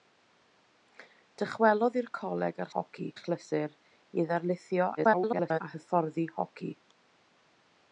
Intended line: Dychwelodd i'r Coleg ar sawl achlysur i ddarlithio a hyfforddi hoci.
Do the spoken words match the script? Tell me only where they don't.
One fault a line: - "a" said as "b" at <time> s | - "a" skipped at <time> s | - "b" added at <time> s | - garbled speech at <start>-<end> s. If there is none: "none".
- "sawl" said as "hoci" at 2.8 s
- garbled speech at 5.0-5.6 s